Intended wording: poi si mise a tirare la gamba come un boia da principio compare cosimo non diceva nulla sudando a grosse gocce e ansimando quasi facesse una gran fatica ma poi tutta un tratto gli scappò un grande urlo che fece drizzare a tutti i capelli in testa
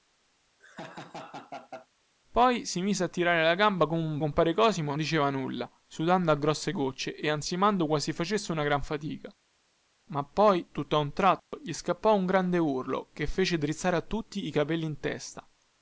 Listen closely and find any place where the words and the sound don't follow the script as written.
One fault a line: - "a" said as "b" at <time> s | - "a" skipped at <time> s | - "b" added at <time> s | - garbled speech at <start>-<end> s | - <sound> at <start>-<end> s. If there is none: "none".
- laugh at 0.6-1.9 s
- "boia da principio" skipped at 4.2 s
- "non" skipped at 4.9 s
- dropout at 11.4-11.5 s